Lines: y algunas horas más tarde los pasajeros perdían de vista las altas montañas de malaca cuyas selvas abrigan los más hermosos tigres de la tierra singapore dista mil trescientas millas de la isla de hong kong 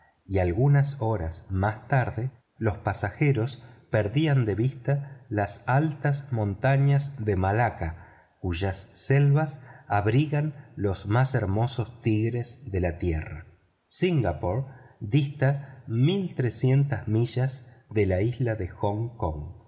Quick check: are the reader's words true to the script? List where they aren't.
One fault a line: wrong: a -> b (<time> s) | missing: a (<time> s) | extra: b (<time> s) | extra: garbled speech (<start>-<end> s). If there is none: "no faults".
no faults